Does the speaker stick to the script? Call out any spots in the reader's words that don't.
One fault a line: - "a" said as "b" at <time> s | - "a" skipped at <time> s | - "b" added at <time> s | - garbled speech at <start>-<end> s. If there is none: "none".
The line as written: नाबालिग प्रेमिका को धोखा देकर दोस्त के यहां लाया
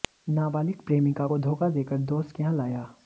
none